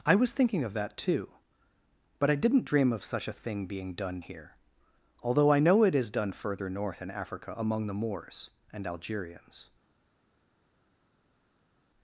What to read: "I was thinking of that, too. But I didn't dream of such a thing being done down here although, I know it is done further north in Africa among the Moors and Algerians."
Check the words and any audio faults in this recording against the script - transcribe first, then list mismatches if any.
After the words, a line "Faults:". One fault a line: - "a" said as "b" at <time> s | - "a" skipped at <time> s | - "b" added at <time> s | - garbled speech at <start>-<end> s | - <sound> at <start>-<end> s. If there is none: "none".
"I was thinking of that, too. But I didn't dream of such a thing being done here although, I know it is done further north in Africa among the Moors and Algerians."
Faults:
- "down" skipped at 4.2 s